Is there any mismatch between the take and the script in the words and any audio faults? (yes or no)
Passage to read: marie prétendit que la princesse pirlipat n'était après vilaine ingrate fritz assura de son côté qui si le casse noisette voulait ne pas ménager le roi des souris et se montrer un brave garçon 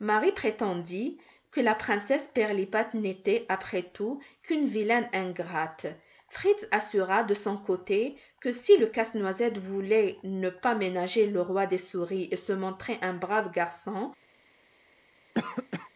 yes